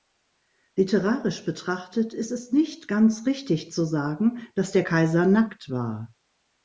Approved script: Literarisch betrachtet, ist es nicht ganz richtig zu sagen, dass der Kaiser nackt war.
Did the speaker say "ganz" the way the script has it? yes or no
yes